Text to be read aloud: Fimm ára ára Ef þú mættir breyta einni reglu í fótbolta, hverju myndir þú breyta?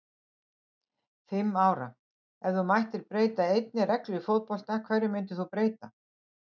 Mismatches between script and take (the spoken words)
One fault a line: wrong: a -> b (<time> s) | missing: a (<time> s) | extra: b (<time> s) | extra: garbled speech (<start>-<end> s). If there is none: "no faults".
missing: ára (1.9 s)